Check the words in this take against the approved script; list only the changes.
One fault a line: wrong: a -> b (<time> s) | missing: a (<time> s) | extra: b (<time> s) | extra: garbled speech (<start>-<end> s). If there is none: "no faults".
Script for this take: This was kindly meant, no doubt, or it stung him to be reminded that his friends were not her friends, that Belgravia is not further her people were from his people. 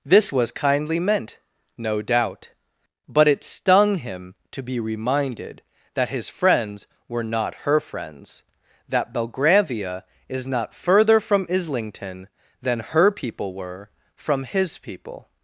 wrong: or -> but (3.1 s)
extra: from Islington than (11.2 s)